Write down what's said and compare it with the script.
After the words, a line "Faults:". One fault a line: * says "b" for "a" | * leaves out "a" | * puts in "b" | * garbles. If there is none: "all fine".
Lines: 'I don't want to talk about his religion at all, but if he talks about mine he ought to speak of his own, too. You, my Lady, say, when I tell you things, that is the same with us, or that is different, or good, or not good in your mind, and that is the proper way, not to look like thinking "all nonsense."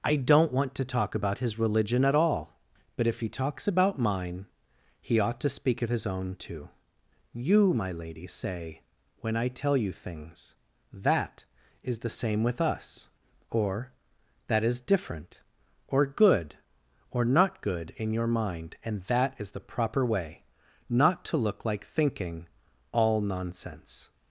'I don't want to talk about his religion at all, but if he talks about mine he ought to speak of his own, too. You, my Lady, say, when I tell you things, that is the same with us, or that is different, or good, or not good in your mind, and that is the proper way, not to look like thinking "all nonsense."
Faults:
all fine